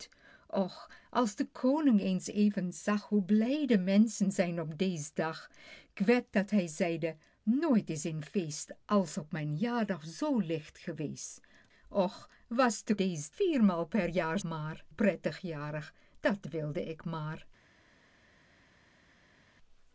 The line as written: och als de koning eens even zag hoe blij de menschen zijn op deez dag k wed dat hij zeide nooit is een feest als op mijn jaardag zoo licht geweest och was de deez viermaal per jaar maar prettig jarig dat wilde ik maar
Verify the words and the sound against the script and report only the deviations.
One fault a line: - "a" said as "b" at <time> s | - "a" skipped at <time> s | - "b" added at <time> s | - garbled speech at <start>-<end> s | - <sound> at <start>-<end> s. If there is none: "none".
none